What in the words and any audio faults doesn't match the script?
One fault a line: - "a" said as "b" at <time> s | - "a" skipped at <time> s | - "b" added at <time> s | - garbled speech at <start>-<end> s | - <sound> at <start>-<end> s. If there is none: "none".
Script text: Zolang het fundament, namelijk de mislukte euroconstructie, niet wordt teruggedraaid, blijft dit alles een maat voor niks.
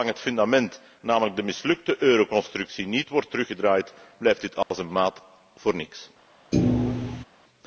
- dropout at 4.6-4.7 s
- thud at 6.5-7.2 s